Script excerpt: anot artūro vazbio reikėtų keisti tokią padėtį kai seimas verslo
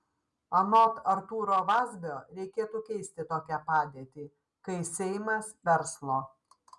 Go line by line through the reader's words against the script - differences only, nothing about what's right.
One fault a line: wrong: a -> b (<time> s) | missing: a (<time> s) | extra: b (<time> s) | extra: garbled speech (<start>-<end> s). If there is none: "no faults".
no faults